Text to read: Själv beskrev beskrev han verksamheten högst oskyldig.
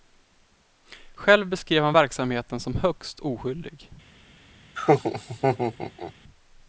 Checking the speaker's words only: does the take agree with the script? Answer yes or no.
no